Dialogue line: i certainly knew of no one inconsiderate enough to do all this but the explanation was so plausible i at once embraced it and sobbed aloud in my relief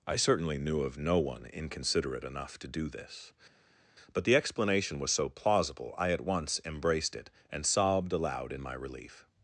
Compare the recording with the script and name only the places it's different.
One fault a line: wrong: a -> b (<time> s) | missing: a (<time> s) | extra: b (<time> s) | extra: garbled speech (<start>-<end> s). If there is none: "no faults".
missing: all (2.9 s)